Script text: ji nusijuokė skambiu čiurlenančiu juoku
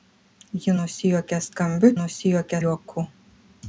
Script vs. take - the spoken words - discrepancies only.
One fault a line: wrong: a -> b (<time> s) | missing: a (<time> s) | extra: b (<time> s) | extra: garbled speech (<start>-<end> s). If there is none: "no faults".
wrong: čiurlenančiu -> nusijuokė (2.0 s)